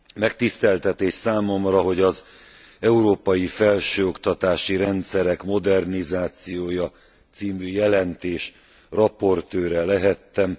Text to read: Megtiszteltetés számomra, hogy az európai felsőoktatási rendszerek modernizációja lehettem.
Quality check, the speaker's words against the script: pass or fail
fail